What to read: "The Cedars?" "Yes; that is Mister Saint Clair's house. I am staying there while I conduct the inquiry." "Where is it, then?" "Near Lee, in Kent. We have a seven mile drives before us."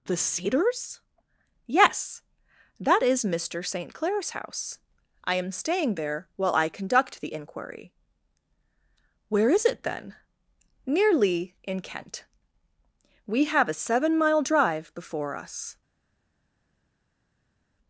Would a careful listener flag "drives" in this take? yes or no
yes